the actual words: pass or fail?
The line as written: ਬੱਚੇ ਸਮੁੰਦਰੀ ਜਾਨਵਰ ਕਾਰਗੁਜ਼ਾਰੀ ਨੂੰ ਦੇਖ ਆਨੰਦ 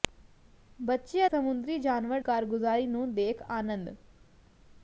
pass